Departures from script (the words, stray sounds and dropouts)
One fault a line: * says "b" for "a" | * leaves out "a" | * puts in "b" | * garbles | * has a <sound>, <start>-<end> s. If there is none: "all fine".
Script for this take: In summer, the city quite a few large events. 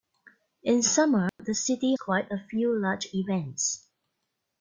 * has a dropout, 1.3-1.4 s